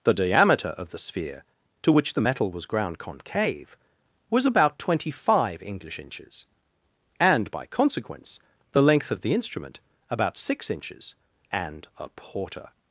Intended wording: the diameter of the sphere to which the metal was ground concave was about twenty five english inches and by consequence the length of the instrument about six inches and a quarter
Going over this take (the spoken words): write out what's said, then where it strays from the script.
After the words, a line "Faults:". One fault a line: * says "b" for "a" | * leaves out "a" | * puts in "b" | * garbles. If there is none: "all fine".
the diameter of the sphere to which the metal was ground concave was about twenty five english inches and by consequence the length of the instrument about six inches and a porter
Faults:
* says "porter" for "quarter"